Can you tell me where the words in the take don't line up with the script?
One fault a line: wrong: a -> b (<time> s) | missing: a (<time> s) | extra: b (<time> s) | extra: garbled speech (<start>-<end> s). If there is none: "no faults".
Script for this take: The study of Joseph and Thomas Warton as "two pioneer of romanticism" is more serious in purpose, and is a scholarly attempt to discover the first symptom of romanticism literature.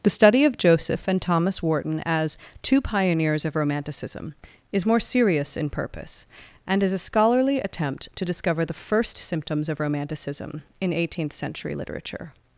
wrong: pioneer -> pioneers (2.8 s)
wrong: symptom -> symptoms (9.2 s)
extra: in eighteenth century (10.8 s)